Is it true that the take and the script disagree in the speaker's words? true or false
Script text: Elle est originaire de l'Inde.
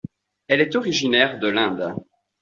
false